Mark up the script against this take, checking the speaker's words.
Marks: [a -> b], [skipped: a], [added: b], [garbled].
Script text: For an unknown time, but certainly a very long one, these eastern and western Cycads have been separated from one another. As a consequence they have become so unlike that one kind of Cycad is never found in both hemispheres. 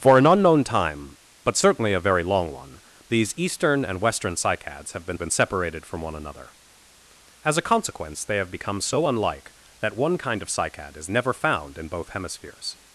For an unknown time, but certainly a very long one, these eastern and western Cycads have been [added: been] separated from one another. As a consequence they have become so unlike that one kind of Cycad is never found in both hemispheres.